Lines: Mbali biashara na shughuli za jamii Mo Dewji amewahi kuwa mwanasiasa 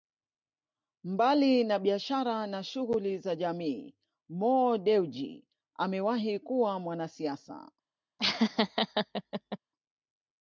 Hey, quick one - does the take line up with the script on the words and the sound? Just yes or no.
no